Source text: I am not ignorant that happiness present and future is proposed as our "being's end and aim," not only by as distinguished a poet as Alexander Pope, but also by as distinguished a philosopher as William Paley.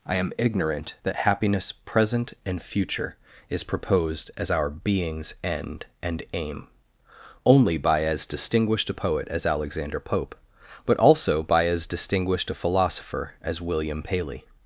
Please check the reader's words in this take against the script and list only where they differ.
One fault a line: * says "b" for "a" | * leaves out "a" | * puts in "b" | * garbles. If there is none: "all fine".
* leaves out "not"
* leaves out "not"